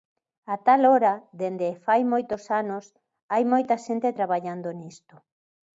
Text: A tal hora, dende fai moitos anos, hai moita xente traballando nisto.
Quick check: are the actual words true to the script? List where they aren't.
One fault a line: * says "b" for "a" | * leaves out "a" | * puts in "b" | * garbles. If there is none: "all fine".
all fine